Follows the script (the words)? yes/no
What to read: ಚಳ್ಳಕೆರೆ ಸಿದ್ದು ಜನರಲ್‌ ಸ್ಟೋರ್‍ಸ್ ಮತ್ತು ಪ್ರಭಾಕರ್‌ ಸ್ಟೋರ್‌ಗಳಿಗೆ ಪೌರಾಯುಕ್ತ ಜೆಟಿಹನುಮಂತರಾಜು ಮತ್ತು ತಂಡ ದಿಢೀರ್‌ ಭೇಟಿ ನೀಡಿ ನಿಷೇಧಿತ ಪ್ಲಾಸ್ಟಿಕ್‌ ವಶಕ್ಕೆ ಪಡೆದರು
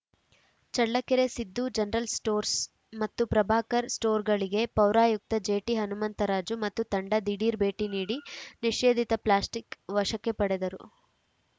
yes